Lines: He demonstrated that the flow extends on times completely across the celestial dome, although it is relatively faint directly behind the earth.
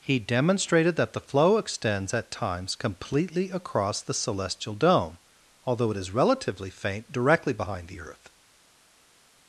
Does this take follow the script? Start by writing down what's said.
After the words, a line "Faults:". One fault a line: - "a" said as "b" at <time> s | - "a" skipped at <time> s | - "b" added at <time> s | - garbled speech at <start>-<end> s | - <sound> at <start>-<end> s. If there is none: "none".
He demonstrated that the flow extends at times completely across the celestial dome, although it is relatively faint directly behind the earth.
Faults:
- "on" said as "at" at 2.1 s